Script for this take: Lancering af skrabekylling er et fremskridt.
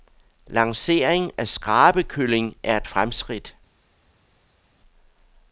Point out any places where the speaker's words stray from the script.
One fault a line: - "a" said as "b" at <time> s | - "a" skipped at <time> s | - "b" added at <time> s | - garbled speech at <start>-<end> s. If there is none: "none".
none